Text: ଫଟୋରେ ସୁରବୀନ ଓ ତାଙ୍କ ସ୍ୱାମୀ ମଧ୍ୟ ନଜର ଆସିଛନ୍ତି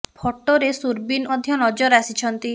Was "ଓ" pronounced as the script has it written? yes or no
no